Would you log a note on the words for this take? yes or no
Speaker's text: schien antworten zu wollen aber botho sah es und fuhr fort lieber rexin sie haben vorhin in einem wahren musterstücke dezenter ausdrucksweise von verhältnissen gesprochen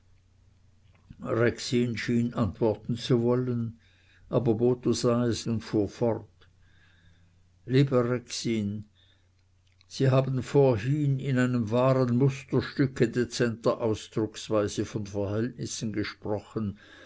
no